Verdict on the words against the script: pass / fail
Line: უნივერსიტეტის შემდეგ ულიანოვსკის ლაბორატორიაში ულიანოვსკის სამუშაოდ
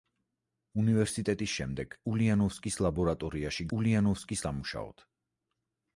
pass